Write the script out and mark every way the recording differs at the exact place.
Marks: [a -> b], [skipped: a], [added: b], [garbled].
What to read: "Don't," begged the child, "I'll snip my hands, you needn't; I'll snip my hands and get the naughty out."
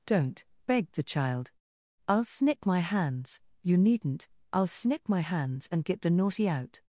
"Don't," begged the child, "I'll snip my hands, you needn't; I'll snip my hands and get the naughty out."